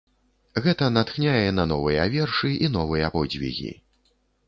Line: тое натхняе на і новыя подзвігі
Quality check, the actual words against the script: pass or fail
fail